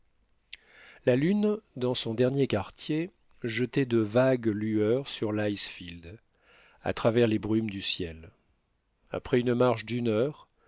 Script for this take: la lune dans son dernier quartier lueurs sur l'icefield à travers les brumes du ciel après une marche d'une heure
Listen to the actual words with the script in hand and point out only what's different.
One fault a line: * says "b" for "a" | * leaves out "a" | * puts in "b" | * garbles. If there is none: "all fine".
* puts in "jetait de vagues"